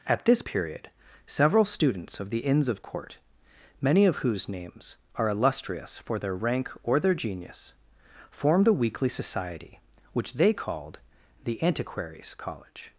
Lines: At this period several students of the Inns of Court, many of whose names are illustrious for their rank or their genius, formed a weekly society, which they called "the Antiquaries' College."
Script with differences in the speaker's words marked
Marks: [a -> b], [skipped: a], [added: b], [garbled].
At this period several students of the Inns of Court, many of whose names are illustrious for their rank or their genius, formed a weekly society, which they called "the Antiquaries' College."